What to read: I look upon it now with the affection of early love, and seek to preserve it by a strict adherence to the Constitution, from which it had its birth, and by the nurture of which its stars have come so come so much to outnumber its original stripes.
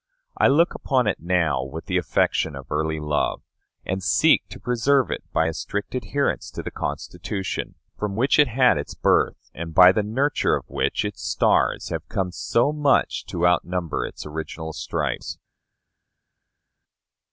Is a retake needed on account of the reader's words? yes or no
yes